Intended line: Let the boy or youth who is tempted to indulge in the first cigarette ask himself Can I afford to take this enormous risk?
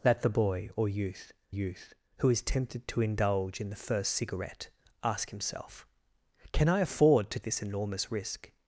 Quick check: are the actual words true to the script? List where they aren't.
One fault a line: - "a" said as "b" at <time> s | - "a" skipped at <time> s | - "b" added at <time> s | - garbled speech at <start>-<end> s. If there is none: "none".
- "youth" added at 1.5 s
- "take" skipped at 7.4 s